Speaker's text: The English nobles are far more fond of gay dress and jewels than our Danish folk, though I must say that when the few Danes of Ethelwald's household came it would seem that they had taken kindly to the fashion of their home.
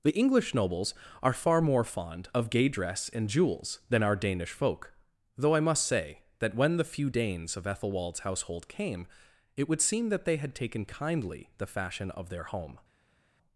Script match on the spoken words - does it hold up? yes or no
no